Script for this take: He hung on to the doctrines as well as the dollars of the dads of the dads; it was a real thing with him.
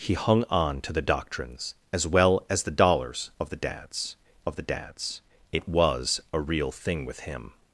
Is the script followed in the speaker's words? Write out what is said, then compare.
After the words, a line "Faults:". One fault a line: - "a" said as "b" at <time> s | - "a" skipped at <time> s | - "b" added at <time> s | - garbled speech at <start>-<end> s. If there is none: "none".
He hung on to the doctrines as well as the dollars of the dads of the dads; it was a real thing with him.
Faults:
none